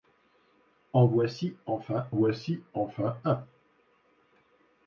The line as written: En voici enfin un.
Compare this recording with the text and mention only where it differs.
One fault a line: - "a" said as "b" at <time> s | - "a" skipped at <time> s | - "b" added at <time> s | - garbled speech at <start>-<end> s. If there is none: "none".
- "voici enfin" added at 2.1 s